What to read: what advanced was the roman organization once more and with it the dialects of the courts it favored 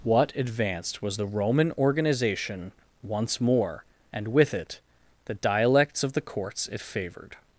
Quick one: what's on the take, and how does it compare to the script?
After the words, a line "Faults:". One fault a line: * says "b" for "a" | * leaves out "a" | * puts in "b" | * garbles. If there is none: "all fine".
what advanced was the roman organization once more and with it the dialects of the courts it favored
Faults:
all fine